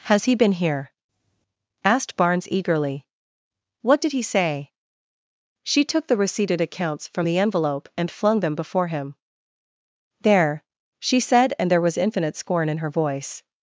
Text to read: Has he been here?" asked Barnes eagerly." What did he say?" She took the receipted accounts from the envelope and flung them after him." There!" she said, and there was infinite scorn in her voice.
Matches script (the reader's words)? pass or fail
fail